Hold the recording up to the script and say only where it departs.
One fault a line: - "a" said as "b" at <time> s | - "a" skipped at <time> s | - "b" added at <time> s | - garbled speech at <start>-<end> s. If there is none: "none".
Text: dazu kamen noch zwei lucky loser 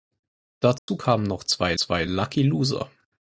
- "zwei" added at 1.7 s